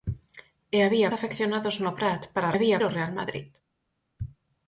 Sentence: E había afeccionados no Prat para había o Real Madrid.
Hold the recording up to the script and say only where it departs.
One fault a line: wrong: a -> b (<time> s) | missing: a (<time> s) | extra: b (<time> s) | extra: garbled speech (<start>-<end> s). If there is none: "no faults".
no faults